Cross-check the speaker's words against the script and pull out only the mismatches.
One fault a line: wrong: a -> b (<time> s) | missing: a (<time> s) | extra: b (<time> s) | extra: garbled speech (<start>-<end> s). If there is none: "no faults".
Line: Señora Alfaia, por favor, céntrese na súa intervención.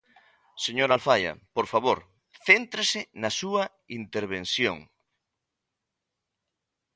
no faults